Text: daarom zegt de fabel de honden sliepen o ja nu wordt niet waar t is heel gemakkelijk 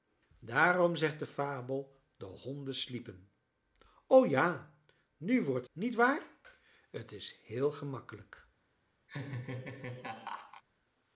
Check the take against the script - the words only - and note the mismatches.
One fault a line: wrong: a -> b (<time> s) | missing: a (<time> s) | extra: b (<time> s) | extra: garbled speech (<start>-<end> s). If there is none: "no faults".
no faults